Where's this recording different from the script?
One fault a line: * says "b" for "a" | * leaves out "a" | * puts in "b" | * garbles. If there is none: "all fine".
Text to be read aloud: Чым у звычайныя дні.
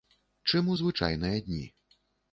all fine